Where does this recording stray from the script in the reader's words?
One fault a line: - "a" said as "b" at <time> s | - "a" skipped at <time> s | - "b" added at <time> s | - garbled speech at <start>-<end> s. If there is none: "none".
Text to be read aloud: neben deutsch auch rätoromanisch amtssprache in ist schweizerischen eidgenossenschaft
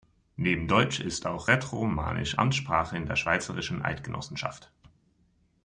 - "ist" added at 1.0 s
- "ist" said as "der" at 3.0 s